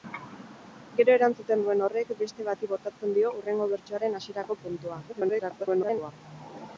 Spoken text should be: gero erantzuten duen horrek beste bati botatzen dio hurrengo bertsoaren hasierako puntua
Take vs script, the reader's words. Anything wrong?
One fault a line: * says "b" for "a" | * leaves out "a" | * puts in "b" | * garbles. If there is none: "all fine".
* garbles